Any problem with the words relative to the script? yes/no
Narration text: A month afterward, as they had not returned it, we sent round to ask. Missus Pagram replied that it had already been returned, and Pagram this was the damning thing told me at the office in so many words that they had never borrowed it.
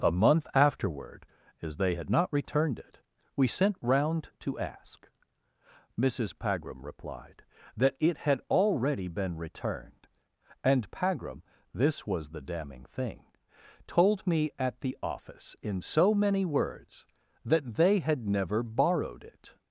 no